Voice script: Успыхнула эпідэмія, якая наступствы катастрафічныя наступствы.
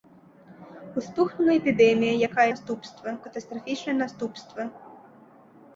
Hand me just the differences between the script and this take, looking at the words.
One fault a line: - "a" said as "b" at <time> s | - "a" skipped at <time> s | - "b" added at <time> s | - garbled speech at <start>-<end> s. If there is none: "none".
none